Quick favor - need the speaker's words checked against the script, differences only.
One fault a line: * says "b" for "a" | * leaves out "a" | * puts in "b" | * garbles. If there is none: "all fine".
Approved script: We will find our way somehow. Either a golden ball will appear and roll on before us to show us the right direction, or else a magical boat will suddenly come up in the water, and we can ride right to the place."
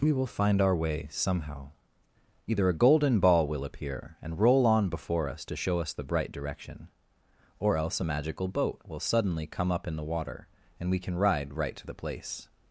* says "bright" for "right"